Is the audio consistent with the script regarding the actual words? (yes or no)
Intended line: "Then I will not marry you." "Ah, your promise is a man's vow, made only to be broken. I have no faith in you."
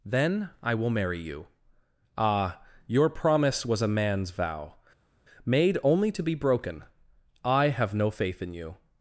no